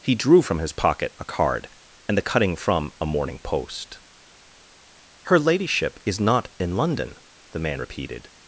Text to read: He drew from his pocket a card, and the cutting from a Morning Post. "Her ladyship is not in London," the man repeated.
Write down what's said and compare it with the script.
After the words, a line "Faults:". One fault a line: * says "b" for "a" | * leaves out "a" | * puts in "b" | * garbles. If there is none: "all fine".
He drew from his pocket a card, and the cutting from a Morning Post. "Her ladyship is not in London," the man repeated.
Faults:
all fine